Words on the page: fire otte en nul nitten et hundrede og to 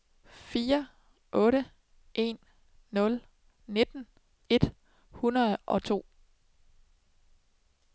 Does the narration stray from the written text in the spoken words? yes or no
no